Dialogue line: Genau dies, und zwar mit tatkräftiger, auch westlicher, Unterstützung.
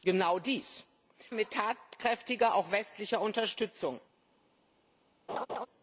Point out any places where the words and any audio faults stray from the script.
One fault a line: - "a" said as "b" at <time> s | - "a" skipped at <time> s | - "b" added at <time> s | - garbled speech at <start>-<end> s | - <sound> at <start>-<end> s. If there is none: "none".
- "und zwar" skipped at 0.9 s
- laugh at 5.3-5.7 s